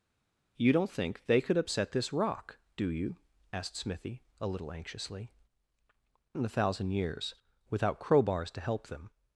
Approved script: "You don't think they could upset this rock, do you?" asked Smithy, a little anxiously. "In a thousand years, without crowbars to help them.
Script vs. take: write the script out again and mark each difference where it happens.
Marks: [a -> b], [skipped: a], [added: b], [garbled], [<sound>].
"You don't think they could upset this rock, do you?" asked Smithy, a little anxiously. "In a thousand years, without crowbars to help them.